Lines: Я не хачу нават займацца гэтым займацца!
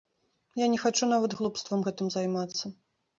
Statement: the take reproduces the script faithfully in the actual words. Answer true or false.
false